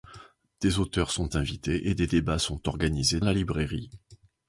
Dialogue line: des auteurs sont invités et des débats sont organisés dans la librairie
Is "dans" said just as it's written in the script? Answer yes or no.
no